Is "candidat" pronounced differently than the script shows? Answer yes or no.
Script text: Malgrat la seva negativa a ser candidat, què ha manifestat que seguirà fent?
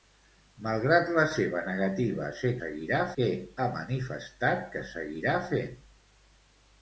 yes